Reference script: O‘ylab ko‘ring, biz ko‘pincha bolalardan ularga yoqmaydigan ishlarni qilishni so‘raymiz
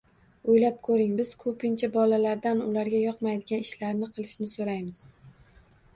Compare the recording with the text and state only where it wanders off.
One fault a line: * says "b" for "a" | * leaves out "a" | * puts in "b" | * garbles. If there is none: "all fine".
all fine